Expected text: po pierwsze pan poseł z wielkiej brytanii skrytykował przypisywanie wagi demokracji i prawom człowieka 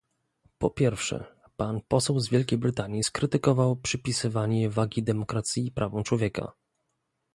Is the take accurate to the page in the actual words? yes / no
yes